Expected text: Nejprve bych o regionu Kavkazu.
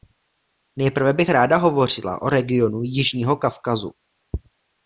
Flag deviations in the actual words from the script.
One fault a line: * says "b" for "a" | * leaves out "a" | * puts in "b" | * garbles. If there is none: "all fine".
* puts in "ráda hovořila"
* puts in "Jižního"